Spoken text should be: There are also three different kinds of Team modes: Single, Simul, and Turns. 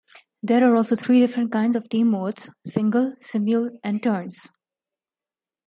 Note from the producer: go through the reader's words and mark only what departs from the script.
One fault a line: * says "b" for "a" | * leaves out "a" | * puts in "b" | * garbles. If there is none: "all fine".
all fine